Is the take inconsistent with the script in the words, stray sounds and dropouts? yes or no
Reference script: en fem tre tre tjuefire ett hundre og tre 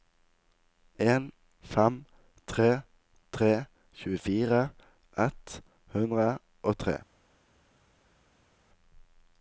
no